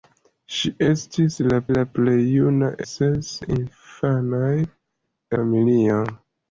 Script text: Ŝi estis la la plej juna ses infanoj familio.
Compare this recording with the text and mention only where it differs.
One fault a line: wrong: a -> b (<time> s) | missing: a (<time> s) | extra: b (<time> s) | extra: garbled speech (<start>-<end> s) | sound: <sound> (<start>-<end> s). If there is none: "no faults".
no faults